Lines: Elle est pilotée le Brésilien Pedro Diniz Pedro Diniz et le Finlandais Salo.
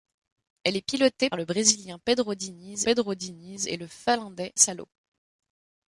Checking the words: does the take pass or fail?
pass